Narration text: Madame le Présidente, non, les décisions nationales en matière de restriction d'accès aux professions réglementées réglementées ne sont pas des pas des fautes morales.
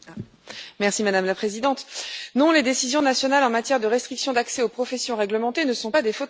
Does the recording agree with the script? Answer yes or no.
no